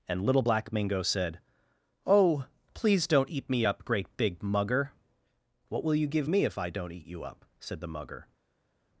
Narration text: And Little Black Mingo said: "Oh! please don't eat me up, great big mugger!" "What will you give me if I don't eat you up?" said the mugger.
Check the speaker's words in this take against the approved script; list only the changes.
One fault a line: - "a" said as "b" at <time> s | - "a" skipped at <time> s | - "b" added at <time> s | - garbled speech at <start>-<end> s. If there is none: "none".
none